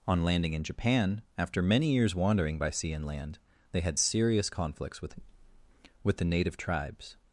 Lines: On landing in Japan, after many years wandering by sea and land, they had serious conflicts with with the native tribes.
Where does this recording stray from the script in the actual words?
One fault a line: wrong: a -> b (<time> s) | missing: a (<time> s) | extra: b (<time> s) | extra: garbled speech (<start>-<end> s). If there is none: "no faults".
no faults